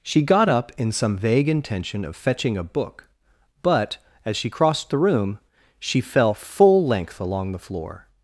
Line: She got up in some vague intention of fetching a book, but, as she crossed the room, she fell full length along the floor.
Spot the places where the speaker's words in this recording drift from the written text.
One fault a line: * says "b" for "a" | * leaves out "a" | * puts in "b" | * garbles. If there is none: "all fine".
all fine